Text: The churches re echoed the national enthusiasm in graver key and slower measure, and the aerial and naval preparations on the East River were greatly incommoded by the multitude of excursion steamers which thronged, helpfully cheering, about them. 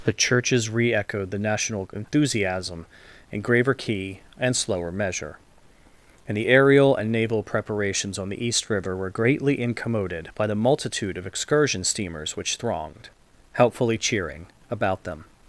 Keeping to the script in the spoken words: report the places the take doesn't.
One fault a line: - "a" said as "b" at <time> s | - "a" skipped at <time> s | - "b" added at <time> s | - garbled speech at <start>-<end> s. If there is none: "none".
none